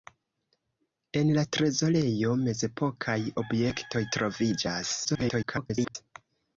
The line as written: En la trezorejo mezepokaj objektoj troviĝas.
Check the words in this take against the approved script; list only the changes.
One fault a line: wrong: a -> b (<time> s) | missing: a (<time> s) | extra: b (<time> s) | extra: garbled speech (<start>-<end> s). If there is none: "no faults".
extra: garbled speech (5.0-6.0 s)